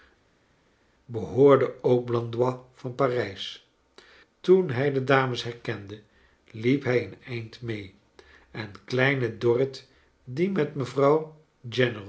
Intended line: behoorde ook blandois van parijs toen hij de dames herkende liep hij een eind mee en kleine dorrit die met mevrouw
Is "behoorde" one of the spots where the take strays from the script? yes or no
no